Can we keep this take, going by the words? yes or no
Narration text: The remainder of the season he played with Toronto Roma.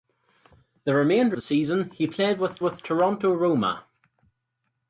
no